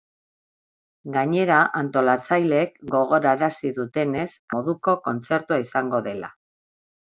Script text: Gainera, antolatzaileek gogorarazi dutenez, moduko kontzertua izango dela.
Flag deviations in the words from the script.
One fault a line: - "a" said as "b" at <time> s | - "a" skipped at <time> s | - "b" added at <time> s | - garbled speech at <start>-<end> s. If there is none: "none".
none